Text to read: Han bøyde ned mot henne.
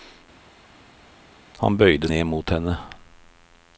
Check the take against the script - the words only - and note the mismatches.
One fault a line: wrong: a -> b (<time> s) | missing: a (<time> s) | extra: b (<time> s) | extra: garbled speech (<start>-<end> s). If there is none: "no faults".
no faults